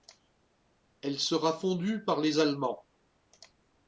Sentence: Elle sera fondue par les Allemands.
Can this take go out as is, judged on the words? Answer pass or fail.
pass